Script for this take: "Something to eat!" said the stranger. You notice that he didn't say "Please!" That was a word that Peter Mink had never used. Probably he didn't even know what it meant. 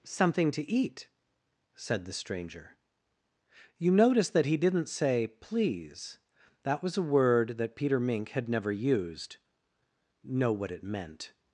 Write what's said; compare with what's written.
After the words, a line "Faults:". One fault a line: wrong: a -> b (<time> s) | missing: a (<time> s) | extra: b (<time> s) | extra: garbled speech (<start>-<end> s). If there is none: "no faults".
"Something to eat!" said the stranger. You notice that he didn't say "Please!" That was a word that Peter Mink had never used. know what it meant.
Faults:
missing: Probably he didn't even (9.4 s)